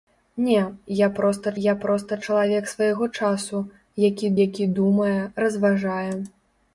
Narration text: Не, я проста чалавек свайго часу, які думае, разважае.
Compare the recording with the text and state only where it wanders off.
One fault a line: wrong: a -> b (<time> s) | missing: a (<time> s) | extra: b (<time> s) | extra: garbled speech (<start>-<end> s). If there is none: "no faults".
extra: я проста (1.6 s)
extra: які (4.5 s)